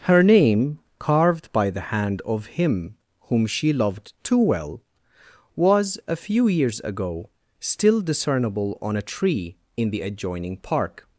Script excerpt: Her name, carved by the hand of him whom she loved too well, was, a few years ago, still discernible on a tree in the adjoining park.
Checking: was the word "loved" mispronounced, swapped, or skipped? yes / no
no